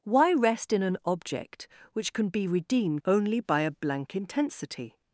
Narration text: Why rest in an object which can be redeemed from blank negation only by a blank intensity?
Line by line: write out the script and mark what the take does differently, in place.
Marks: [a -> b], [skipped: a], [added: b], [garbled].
Why rest in an object which can be redeemed [skipped: from blank negation] only by a blank intensity?